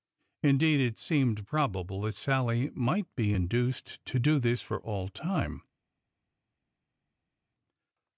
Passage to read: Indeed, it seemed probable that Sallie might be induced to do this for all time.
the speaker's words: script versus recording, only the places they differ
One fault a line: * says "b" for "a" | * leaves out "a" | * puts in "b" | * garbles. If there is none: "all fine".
all fine